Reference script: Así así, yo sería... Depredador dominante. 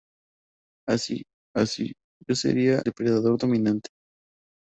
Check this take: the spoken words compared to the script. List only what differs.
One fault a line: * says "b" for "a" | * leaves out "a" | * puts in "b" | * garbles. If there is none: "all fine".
all fine